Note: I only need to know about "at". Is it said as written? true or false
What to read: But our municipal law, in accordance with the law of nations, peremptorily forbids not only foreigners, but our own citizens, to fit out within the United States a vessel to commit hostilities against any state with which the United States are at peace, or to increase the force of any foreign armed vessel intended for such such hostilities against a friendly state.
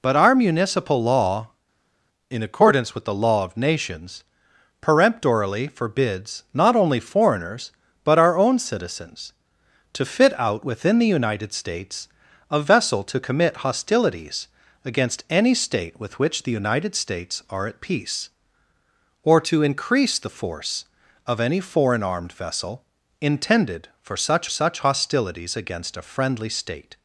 true